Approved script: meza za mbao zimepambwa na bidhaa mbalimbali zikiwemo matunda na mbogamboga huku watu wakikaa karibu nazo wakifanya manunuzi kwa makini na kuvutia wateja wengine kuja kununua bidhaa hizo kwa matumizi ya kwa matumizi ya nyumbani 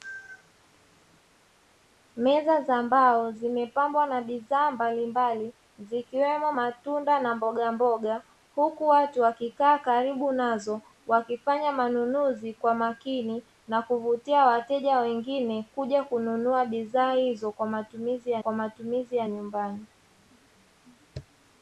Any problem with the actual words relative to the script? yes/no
no